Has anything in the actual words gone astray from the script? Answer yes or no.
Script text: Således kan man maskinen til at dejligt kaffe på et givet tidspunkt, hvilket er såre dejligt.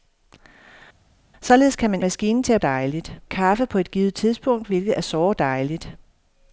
no